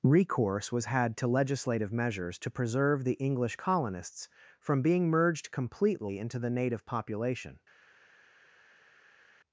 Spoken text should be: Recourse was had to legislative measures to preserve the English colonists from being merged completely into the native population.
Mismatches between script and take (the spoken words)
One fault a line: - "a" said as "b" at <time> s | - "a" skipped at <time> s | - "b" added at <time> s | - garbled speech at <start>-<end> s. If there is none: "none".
none